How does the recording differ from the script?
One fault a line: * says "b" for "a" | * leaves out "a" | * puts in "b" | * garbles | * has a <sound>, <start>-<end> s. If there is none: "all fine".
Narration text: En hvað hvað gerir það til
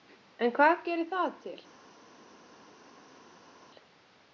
* leaves out "hvað"